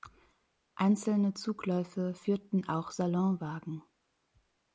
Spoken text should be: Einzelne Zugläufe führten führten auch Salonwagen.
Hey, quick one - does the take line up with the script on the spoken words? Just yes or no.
no